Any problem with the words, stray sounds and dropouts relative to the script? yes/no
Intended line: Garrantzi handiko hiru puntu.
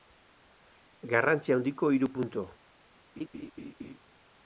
yes